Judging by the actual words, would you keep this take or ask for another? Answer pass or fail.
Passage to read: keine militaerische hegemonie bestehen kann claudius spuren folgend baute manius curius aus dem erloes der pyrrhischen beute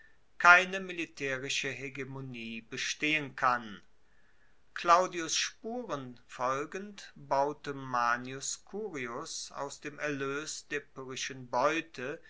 pass